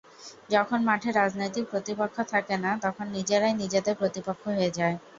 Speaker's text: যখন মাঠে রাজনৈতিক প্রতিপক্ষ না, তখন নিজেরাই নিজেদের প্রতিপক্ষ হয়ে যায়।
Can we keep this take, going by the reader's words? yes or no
no